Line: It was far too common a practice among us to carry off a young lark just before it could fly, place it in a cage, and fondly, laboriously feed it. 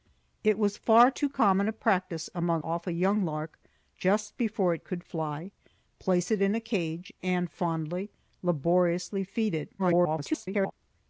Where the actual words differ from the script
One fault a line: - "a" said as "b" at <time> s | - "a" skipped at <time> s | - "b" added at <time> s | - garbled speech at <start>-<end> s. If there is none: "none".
- "us to carry" skipped at 2.6 s
- garbled speech at 9.8-10.7 s